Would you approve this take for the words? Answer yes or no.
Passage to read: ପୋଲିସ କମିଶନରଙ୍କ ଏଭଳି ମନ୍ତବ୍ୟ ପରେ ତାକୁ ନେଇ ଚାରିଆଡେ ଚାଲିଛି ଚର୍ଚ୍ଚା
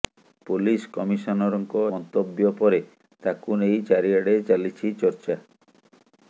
no